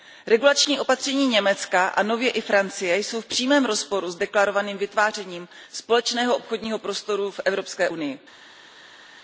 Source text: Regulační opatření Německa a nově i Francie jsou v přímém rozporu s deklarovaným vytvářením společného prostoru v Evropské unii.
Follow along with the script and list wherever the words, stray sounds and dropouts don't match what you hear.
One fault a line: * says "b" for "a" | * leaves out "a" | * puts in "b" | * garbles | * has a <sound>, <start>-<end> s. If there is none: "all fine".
* puts in "obchodního"